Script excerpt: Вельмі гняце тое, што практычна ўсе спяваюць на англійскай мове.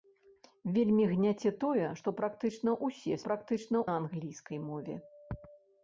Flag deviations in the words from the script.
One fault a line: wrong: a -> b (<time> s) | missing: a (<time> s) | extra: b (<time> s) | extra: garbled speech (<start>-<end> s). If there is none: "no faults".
wrong: спяваюць -> практычна (3.3 s)